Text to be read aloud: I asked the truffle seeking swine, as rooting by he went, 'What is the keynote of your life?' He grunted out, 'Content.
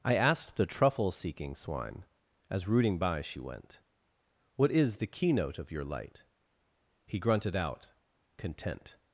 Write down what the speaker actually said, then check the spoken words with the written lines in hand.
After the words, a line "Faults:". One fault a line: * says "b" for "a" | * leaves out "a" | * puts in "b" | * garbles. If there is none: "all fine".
I asked the truffle seeking swine, as rooting by she went, 'What is the keynote of your light?' He grunted out, 'Content.
Faults:
* says "she" for "he"
* says "light" for "life"